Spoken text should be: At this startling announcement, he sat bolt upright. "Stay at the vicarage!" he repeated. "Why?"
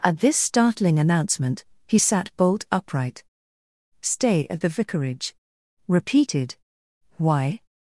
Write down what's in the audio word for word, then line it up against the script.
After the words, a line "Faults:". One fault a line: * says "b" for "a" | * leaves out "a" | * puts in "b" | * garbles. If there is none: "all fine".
At this startling announcement, he sat bolt upright. "Stay at the vicarage!" repeated. "Why?"
Faults:
* leaves out "he"